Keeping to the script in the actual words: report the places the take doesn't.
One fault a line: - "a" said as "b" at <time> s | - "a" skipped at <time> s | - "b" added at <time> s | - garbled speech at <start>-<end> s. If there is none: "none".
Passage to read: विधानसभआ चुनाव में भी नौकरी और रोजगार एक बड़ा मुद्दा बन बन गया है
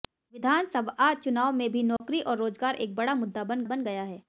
none